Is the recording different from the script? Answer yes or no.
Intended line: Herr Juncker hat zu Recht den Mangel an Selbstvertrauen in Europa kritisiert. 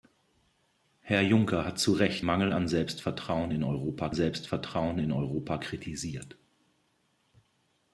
yes